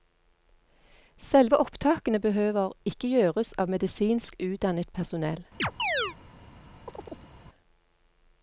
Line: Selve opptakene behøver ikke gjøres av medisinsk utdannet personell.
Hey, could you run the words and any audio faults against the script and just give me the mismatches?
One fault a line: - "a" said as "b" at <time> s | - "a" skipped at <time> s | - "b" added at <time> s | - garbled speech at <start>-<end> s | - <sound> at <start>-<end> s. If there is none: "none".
- chirp at 5.6-6.2 s
- chirp at 6.9-7.3 s